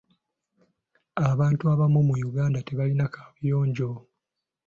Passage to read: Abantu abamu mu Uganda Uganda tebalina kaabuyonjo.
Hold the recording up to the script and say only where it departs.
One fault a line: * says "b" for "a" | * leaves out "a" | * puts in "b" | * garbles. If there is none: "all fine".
* leaves out "Uganda"